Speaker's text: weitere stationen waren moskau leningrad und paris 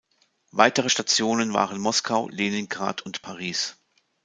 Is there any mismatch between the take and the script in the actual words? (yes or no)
no